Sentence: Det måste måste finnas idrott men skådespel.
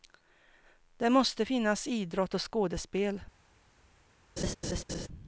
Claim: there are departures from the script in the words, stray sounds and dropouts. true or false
true